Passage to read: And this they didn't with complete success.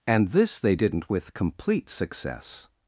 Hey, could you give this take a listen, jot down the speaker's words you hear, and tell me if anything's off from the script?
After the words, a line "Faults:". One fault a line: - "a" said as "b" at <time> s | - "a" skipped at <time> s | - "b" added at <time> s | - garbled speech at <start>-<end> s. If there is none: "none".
And this they didn't with complete success.
Faults:
none